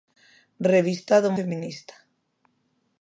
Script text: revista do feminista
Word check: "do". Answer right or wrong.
right